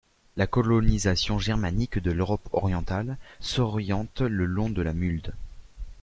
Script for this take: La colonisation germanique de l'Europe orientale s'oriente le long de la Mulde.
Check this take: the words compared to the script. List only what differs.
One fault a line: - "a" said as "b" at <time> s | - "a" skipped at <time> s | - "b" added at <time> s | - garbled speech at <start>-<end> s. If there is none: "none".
none